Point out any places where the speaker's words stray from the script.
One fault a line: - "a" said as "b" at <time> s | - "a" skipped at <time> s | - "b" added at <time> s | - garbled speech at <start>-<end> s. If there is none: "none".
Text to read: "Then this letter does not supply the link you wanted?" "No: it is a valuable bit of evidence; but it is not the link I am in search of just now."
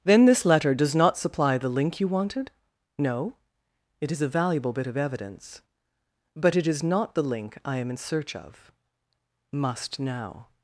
- "just" said as "must" at 9.5 s